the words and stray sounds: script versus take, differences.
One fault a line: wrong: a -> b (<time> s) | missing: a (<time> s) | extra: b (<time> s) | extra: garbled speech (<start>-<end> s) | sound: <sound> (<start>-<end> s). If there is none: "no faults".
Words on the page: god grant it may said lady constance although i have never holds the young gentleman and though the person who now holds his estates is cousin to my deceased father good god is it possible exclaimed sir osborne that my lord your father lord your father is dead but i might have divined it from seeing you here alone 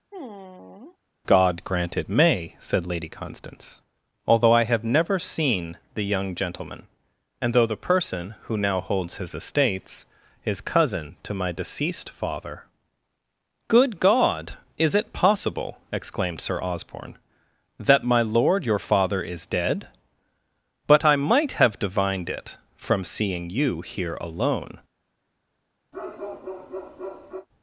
sound: sigh (0.1-1.0 s)
wrong: holds -> seen (5.2 s)
missing: lord your father (19.2 s)
sound: bark (25.9-27.5 s)